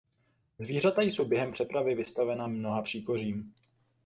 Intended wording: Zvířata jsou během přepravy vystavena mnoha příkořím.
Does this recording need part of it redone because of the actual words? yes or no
no